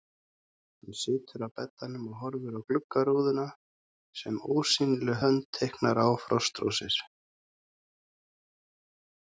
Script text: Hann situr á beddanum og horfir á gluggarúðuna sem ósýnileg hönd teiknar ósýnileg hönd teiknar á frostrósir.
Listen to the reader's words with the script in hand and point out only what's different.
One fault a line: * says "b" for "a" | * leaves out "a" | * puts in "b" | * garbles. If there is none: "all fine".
* leaves out "ósýnileg hönd teiknar"